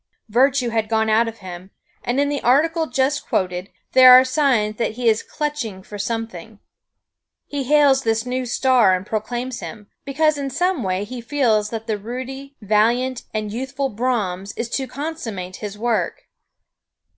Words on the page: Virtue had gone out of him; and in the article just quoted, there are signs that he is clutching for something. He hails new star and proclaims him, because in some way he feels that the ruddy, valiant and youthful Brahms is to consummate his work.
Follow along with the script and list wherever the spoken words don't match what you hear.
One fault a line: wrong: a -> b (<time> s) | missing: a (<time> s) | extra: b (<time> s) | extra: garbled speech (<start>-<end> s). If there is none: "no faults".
extra: this (8.0 s)